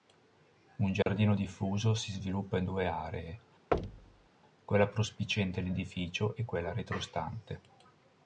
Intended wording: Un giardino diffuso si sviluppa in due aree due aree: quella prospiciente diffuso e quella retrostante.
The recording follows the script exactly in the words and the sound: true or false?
false